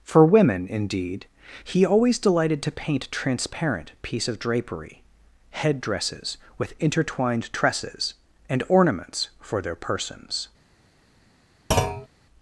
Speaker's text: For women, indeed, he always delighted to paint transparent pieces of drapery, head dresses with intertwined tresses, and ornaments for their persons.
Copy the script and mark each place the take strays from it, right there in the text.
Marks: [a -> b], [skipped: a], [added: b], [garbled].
For women, indeed, he always delighted to paint transparent [pieces -> piece] of drapery, head dresses with intertwined tresses, and ornaments for their persons.